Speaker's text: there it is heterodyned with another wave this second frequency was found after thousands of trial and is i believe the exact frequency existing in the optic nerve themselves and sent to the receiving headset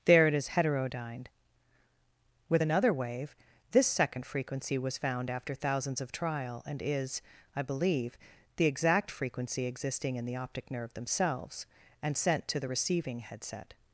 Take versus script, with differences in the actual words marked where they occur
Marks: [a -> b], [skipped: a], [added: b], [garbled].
there it is heterodyned with another wave this second frequency was found after thousands of trial and is i believe the exact frequency existing in the optic nerve themselves and sent to the receiving headset